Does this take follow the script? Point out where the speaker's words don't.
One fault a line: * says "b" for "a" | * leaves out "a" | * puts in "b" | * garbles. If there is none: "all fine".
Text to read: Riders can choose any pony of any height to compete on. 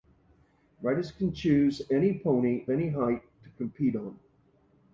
* leaves out "of"